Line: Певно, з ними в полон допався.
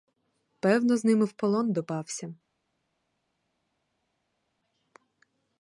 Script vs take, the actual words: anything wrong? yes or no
no